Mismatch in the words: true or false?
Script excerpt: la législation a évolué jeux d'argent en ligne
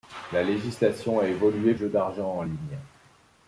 false